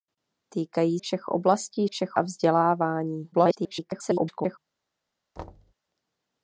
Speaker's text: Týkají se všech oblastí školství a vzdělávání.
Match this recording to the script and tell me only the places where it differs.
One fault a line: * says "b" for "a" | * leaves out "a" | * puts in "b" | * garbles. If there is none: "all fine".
* leaves out "se"
* says "všech" for "školství"
* garbles